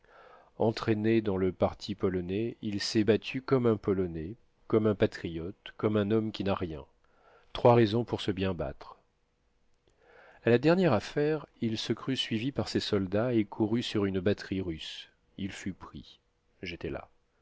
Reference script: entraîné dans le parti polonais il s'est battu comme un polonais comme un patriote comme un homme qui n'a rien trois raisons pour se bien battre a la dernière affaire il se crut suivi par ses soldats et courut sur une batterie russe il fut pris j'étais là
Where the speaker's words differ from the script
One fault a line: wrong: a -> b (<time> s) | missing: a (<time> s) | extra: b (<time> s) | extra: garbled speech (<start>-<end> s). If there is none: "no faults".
no faults